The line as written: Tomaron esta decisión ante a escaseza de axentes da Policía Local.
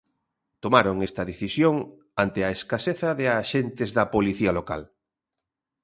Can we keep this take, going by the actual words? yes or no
yes